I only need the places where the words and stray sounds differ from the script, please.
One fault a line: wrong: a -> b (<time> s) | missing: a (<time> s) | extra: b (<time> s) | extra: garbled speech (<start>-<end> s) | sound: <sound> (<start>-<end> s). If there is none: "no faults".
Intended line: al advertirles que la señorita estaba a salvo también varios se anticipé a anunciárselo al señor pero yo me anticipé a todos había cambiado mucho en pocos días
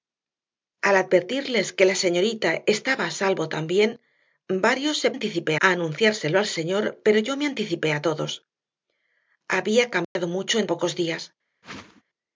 sound: dropout (10.0-10.2 s)
sound: whoosh (11.6-12.0 s)